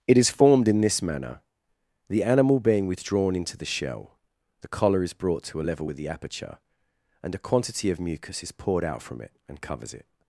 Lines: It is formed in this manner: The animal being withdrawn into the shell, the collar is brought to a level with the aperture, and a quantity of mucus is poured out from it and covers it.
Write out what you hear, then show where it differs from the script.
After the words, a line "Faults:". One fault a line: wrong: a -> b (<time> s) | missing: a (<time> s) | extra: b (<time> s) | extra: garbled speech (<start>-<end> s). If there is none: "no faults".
It is formed in this manner: The animal being withdrawn into the shell, the collar is brought to a level with the aperture, and a quantity of mucus is poured out from it and covers it.
Faults:
no faults